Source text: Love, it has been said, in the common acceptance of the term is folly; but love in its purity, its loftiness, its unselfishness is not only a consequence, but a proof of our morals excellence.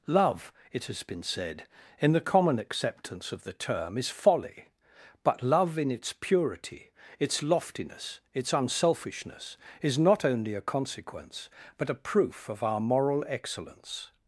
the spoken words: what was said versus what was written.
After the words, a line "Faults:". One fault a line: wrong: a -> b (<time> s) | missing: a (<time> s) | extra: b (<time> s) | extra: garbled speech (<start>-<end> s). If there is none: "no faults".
Love, it has been said, in the common acceptance of the term is folly; but love in its purity, its loftiness, its unselfishness is not only a consequence, but a proof of our moral excellence.
Faults:
wrong: morals -> moral (12.8 s)